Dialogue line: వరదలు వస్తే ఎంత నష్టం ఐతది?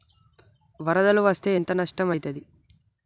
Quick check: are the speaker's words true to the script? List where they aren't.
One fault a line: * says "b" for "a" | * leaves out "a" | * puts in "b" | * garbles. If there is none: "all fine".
all fine